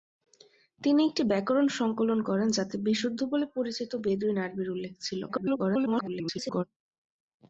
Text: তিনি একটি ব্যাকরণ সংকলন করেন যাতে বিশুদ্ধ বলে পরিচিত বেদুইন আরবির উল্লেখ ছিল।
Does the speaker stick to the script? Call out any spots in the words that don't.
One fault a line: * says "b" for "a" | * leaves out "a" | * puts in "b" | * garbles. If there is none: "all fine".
* garbles